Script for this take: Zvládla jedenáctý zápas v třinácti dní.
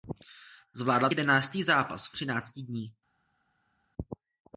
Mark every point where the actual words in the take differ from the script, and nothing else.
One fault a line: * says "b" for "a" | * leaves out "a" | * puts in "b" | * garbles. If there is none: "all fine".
all fine